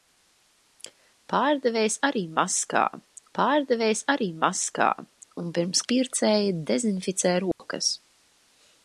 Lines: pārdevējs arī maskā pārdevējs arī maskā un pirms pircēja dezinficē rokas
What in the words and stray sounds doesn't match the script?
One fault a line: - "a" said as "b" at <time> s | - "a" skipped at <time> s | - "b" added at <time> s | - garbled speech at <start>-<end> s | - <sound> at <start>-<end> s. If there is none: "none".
- dropout at 7.5-7.6 s